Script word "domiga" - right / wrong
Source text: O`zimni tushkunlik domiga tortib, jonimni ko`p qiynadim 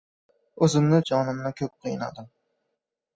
wrong